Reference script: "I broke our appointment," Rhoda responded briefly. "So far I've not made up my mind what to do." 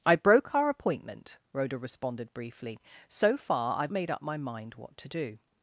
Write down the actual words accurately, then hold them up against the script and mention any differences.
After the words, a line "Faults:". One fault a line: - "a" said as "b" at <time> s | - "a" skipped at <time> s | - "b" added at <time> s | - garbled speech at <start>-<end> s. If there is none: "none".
"I broke our appointment," Rhoda responded briefly. "So far I've made up my mind what to do."
Faults:
- "not" skipped at 3.9 s